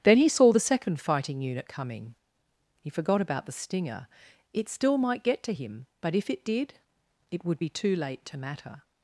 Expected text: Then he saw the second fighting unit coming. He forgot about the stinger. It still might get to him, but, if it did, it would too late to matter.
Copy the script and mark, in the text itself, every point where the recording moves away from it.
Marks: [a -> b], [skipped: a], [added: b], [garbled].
Then he saw the second fighting unit coming. He forgot about the stinger. It still might get to him, but, if it did, it would [added: be] too late to matter.